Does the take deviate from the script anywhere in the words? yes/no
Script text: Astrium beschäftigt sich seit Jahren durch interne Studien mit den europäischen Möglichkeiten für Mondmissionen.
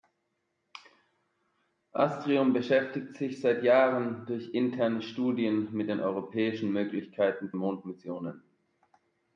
yes